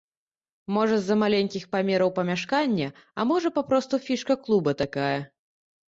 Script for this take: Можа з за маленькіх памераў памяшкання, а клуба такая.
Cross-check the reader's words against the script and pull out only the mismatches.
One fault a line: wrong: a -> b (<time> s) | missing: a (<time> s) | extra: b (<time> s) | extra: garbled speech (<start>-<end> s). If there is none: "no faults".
extra: можа папросту фішка (3.3 s)